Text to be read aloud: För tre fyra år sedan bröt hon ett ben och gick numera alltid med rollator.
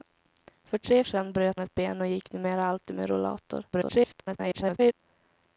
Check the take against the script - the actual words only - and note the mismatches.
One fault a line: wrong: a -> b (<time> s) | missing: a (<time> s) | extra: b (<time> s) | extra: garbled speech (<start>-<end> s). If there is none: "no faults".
missing: fyra år (1.0 s)
missing: hon (1.6 s)
extra: garbled speech (3.7-4.9 s)